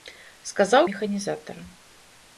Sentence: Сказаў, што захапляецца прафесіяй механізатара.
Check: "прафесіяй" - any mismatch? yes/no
yes